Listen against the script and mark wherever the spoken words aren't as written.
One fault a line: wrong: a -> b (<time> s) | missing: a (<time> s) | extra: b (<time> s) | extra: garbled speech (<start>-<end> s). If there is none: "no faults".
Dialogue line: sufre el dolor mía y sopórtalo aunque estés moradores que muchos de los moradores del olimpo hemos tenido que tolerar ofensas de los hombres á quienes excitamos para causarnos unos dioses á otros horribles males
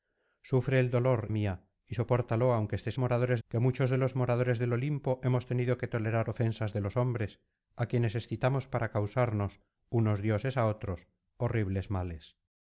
no faults